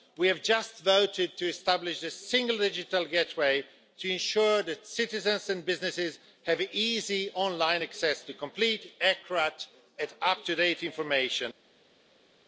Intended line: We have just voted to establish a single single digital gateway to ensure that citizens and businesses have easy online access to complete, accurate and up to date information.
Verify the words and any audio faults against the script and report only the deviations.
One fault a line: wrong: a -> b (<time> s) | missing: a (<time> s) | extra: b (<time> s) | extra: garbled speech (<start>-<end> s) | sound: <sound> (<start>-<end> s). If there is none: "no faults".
missing: single (2.6 s)